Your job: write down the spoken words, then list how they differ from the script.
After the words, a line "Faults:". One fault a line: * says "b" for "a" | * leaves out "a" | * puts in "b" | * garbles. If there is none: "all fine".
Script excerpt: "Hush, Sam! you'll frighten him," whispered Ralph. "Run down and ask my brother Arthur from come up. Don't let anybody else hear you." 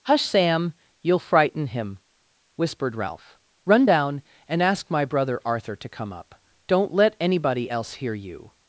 "Hush, Sam! you'll frighten him," whispered Ralph. "Run down and ask my brother Arthur to come up. Don't let anybody else hear you."
Faults:
* says "to" for "from"